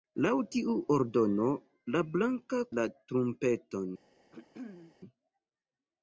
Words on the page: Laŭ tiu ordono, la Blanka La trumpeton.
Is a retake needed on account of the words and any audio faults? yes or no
yes